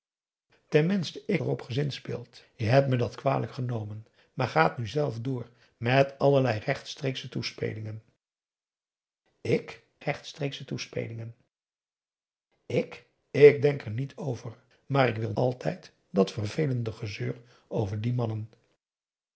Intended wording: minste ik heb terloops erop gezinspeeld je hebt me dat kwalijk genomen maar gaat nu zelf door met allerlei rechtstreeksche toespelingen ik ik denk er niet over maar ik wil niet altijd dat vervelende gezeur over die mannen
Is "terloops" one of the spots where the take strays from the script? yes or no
yes